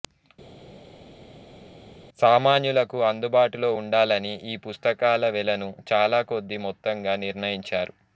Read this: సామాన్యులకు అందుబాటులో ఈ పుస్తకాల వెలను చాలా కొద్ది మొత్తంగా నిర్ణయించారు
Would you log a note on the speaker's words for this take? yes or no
yes